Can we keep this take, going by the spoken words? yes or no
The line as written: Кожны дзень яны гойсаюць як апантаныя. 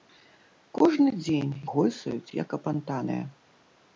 no